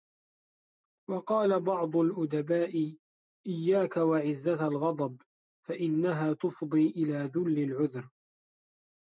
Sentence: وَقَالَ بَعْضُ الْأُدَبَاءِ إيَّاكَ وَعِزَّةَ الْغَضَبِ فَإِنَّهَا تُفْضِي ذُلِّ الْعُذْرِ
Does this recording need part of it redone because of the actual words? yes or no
yes